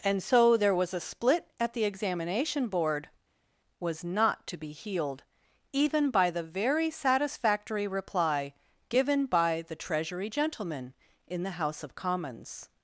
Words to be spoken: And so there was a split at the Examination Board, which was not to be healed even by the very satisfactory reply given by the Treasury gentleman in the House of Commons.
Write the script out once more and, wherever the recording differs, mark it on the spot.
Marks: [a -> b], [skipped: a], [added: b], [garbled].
And so there was a split at the Examination Board, [skipped: which] was not to be healed even by the very satisfactory reply given by the Treasury gentleman in the House of Commons.